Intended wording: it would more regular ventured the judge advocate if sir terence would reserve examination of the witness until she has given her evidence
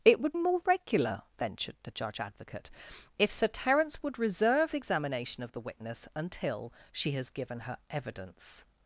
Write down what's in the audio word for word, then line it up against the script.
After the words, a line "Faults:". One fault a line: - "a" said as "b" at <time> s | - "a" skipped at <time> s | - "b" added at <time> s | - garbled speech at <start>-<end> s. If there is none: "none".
it would more regular ventured the judge advocate if sir terence would reserve examination of the witness until she has given her evidence
Faults:
none